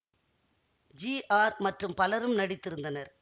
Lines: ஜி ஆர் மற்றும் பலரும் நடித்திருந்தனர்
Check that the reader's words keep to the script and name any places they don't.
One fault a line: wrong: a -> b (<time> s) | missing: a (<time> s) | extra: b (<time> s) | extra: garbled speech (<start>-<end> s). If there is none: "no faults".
no faults